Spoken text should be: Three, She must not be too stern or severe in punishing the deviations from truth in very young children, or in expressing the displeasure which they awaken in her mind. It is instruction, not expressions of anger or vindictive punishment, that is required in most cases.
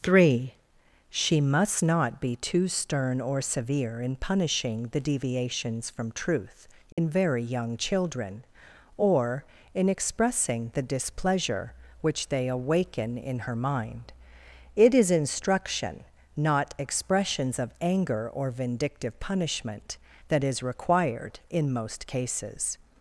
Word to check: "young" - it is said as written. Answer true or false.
true